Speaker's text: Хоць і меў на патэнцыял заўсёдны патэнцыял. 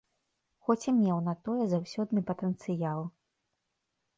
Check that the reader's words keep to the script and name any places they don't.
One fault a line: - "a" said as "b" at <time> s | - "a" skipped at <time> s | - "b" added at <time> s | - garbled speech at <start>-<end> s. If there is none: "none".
- "патэнцыял" said as "тое" at 1.5 s